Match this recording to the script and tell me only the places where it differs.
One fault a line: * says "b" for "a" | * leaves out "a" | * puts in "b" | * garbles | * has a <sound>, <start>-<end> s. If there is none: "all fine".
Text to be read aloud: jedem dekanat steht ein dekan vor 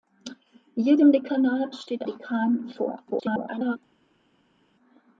* leaves out "ein"
* garbles